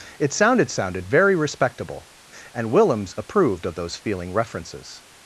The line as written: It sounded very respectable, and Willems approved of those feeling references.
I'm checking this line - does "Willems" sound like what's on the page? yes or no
yes